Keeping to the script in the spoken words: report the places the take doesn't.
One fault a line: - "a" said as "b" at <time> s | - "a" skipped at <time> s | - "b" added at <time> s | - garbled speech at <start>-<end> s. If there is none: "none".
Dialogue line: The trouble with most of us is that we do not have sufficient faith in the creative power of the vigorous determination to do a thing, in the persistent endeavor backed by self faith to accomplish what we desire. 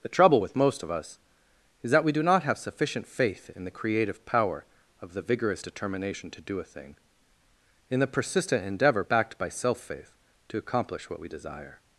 none